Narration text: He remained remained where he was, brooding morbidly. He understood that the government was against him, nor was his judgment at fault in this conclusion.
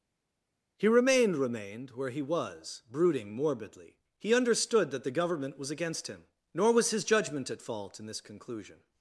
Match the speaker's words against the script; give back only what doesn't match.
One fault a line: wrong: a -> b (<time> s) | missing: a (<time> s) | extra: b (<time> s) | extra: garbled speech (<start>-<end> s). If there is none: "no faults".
no faults